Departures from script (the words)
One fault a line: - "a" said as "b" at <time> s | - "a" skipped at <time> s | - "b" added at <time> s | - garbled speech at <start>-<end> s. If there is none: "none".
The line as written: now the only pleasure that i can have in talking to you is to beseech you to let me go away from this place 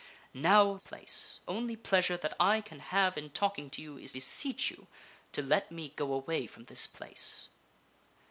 - "the" said as "place" at 0.8 s
- "to" skipped at 4.1 s